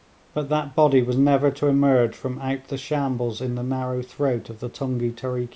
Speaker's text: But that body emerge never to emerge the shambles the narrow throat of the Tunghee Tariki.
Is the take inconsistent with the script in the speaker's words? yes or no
yes